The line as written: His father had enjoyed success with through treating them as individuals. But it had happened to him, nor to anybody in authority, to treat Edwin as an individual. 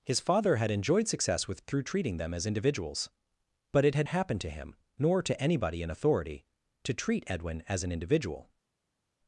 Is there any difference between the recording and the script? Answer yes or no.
no